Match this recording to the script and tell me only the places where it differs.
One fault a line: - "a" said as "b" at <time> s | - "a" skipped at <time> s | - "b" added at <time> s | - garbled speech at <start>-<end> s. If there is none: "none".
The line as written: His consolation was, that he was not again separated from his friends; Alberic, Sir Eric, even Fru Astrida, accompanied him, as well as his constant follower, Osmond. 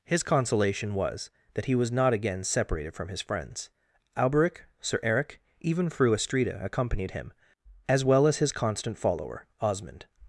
none